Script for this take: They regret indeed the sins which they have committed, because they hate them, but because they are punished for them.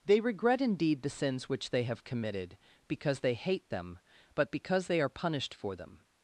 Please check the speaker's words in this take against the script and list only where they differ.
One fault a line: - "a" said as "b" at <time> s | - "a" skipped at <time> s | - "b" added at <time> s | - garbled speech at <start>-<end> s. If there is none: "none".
none